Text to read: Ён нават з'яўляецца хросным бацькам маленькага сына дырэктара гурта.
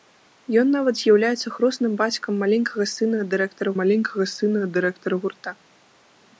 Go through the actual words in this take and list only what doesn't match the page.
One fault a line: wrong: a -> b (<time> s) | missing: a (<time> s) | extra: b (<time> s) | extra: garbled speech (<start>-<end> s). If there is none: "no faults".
extra: маленькага сына дырэктара (3.8 s)